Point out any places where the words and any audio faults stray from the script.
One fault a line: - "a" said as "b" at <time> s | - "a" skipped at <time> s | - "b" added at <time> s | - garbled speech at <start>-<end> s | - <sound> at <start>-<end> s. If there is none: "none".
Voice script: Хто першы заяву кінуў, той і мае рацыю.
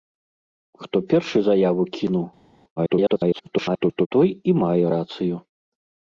- garbled speech at 2.8-4.1 s